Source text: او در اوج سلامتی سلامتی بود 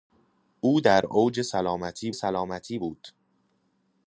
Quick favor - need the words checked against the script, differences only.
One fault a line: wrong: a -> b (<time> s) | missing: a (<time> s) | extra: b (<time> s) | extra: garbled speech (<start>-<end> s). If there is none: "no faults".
no faults